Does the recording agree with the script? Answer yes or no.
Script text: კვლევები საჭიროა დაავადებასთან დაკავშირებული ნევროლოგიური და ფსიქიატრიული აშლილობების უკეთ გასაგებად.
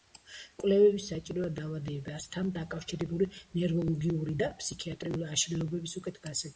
yes